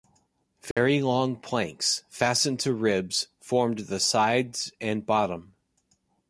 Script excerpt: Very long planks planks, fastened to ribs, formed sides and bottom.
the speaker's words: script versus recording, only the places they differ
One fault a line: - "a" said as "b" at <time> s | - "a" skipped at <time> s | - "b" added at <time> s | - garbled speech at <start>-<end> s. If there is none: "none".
- "planks" skipped at 2.0 s
- "the" added at 3.8 s